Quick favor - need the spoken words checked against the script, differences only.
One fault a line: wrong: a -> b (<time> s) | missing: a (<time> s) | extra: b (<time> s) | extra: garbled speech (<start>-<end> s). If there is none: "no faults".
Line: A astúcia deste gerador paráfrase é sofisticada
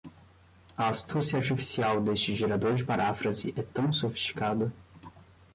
extra: artificial (1.4 s)
extra: de (2.7 s)
extra: tão (3.6 s)